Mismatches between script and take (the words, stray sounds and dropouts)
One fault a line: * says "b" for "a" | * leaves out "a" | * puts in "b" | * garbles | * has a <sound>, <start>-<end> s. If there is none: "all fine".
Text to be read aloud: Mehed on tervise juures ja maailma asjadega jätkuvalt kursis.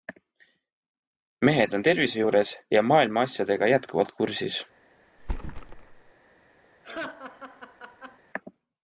* has a thud, 5.2-6.1 s
* has a laugh, 6.8-8.2 s